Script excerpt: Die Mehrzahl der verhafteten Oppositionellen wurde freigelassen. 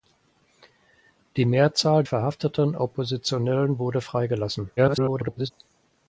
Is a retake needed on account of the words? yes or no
yes